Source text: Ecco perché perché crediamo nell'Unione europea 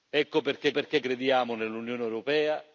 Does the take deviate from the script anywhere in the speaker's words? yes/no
no